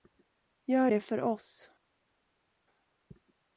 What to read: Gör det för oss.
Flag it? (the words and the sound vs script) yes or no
no